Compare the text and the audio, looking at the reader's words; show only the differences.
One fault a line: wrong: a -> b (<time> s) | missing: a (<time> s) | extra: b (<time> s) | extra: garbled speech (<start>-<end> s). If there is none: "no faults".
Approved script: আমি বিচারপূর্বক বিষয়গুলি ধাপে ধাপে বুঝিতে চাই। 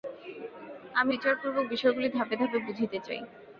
no faults